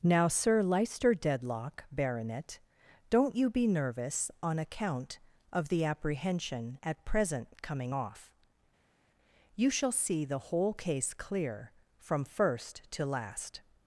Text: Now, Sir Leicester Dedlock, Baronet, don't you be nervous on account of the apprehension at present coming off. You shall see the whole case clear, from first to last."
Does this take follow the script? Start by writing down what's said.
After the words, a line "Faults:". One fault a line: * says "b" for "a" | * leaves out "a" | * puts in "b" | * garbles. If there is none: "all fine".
Now, Sir Leicester Dedlock, Baronet, don't you be nervous on account of the apprehension at present coming off. You shall see the whole case clear, from first to last."
Faults:
all fine